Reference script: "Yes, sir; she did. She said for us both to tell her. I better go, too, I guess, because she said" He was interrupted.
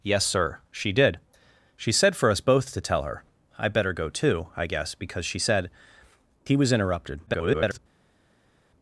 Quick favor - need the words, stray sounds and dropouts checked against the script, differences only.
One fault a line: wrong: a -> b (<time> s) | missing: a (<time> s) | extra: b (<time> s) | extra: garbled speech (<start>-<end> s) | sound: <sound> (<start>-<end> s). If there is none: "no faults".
extra: garbled speech (7.3-7.8 s)